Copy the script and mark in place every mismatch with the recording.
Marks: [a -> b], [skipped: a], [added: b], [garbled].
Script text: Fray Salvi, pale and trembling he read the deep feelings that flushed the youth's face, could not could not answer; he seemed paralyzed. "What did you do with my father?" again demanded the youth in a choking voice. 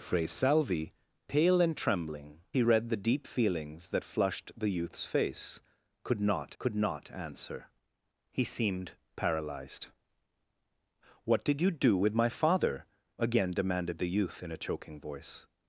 Fray Salvi, pale and trembling he read the deep feelings that flushed the youth's face, could not could not answer; he seemed paralyzed. "What did you do with my father?" again demanded the youth in a choking voice.